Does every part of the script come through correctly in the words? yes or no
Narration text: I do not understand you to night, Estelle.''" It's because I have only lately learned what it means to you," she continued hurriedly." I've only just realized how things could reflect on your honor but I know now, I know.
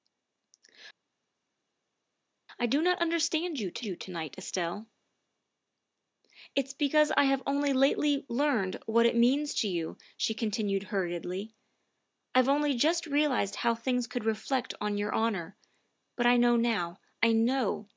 no